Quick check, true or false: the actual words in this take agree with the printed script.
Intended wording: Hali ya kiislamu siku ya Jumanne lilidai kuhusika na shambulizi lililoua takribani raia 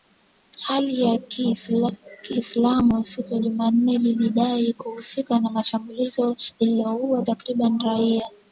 true